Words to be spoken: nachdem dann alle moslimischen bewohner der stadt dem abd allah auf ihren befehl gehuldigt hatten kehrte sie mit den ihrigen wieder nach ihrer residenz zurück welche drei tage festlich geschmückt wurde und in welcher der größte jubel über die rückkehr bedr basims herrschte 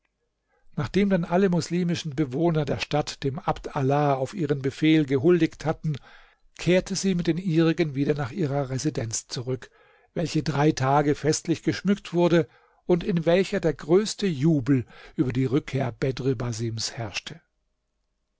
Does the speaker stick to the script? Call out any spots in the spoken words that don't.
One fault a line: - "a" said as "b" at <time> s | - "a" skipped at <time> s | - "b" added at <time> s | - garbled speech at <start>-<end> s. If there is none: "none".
none